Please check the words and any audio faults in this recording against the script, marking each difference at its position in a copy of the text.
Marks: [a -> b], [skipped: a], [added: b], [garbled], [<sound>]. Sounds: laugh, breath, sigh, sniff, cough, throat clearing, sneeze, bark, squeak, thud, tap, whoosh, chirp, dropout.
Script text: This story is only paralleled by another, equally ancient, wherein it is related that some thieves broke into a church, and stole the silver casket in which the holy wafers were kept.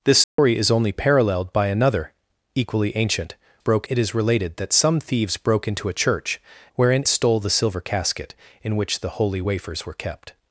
This story [dropout] is only paralleled by another, equally ancient, [wherein -> broke] it is related that some thieves broke into a church, [and -> wherein] stole the silver casket in which the holy wafers were kept.